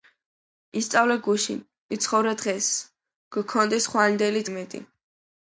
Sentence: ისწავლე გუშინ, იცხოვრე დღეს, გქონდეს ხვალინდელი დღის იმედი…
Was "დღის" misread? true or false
true